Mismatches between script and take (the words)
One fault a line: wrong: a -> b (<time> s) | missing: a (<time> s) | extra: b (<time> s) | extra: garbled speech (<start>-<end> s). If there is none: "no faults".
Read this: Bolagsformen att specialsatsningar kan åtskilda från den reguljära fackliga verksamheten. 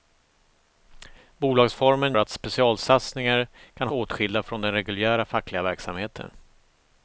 no faults